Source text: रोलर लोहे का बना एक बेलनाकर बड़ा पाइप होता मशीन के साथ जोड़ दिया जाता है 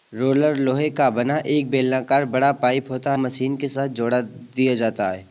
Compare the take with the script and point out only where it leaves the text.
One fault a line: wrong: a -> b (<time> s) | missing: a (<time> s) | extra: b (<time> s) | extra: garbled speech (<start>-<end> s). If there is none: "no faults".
no faults